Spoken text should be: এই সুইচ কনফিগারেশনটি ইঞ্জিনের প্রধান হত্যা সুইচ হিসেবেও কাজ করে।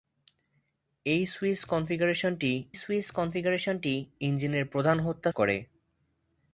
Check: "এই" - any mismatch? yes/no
no